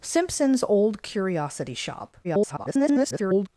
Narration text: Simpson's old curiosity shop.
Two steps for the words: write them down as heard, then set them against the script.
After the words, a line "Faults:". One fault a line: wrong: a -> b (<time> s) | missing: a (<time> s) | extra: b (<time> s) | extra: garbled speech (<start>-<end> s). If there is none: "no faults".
Simpson's old curiosity shop. [garbled]
Faults:
extra: garbled speech (2.2-3.5 s)